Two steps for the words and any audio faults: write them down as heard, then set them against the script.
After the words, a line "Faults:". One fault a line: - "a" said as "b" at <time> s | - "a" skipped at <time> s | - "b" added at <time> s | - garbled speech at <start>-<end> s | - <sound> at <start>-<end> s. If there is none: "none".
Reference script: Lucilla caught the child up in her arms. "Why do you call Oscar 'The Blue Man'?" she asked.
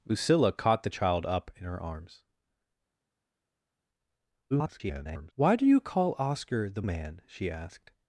Lucilla caught the child up in her arms. [garbled] "Why do you call Oscar 'The Man'?" she asked.
Faults:
- garbled speech at 4.5-5.3 s
- "Blue" skipped at 6.8 s